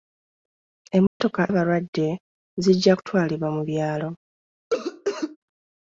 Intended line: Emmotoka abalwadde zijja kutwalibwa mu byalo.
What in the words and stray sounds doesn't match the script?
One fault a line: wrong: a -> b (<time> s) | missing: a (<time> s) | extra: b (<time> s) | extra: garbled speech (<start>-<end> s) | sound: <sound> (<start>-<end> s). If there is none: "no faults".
sound: dropout (1.1-1.2 s)
sound: cough (4.7-5.4 s)